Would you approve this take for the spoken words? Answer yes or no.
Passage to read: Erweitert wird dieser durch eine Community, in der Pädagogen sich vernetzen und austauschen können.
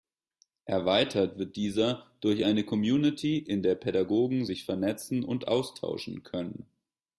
yes